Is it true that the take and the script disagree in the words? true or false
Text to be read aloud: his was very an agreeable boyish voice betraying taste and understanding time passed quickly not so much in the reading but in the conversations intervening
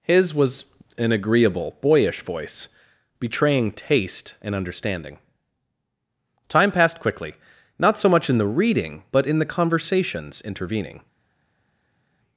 true